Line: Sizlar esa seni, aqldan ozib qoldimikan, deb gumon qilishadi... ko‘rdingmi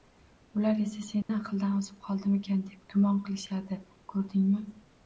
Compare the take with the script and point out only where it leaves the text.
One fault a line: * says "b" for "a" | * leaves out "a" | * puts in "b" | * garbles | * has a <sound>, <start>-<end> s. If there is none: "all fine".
* says "Ular" for "Sizlar"
* has a dropout, 1.2-1.3 s